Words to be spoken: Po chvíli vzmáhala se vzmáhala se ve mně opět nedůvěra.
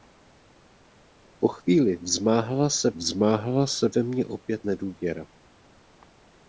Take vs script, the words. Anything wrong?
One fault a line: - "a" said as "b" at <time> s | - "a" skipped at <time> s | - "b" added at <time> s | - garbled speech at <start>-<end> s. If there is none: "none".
none